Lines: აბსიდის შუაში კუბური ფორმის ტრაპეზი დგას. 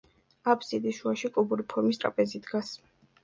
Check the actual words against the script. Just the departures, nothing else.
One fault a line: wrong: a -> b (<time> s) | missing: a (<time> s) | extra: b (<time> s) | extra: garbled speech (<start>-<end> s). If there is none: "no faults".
no faults